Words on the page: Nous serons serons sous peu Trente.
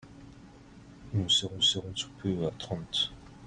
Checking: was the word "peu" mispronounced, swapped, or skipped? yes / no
no